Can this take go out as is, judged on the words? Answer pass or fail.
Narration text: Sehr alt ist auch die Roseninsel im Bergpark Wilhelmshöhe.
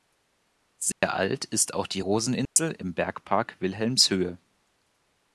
pass